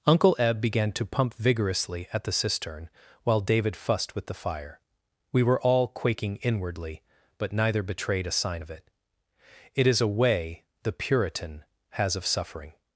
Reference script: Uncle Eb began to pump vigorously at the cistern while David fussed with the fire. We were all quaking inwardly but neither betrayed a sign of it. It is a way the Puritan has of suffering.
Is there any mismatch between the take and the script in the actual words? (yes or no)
no